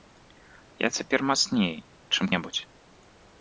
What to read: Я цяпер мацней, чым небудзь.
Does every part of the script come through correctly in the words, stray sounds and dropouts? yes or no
yes